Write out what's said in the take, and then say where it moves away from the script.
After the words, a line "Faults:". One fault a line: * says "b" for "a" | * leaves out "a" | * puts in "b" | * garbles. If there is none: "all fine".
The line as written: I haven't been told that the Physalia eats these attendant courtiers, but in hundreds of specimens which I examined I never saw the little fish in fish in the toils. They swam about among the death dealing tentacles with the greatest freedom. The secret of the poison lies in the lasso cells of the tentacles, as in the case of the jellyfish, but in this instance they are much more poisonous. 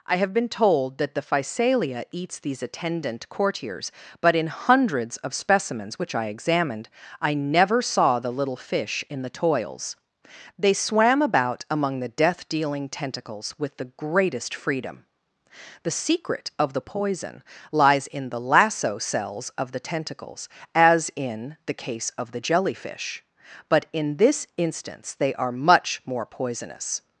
I have been told that the Physalia eats these attendant courtiers, but in hundreds of specimens which I examined I never saw the little fish in the toils. They swam about among the death dealing tentacles with the greatest freedom. The secret of the poison lies in the lasso cells of the tentacles, as in the case of the jellyfish, but in this instance they are much more poisonous.
Faults:
* says "have" for "haven't"
* leaves out "fish in"